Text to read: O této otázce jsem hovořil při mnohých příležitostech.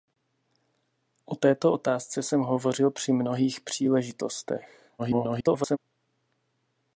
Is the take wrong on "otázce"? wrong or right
right